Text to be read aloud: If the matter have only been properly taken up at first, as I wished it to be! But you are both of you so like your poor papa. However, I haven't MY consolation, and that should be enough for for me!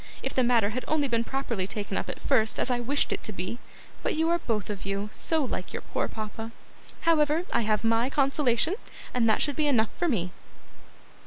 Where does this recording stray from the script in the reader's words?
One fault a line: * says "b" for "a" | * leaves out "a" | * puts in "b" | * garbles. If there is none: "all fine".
* says "had" for "have"
* says "have" for "haven't"
* leaves out "for"